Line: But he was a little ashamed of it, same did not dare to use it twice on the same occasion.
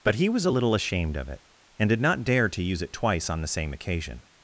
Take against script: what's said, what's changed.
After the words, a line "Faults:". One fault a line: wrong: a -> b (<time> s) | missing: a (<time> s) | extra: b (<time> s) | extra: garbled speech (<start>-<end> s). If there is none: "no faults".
But he was a little ashamed of it, and did not dare to use it twice on the same occasion.
Faults:
wrong: same -> and (1.8 s)